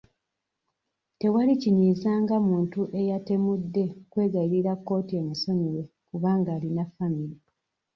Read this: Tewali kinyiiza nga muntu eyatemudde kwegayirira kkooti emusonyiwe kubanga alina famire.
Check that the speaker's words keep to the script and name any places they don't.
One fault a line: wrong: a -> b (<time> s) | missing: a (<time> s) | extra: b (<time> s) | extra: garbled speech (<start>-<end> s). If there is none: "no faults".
no faults